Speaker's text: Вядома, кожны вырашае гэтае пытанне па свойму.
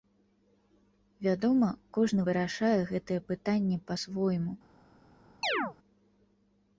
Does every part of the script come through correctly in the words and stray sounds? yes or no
no